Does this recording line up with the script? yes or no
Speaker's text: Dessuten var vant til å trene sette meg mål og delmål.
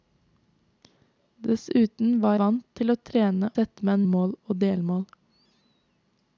yes